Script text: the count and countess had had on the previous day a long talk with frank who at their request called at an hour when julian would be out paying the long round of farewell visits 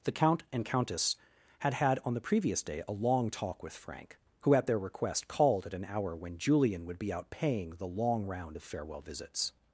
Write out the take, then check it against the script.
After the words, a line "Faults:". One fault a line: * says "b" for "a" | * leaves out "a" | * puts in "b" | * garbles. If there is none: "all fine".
the count and countess had had on the previous day a long talk with frank who at their request called at an hour when julian would be out paying the long round of farewell visits
Faults:
all fine